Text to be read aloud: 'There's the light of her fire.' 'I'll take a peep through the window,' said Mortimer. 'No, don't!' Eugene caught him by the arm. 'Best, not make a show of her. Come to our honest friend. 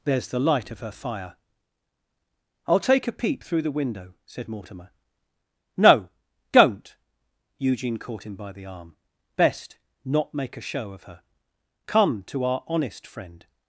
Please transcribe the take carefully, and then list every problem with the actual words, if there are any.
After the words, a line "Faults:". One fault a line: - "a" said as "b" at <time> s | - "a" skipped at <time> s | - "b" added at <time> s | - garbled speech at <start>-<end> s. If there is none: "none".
'There's the light of her fire.' 'I'll take a peep through the window,' said Mortimer. 'No, don't!' Eugene caught him by the arm. 'Best, not make a show of her. Come to our honest friend.
Faults:
none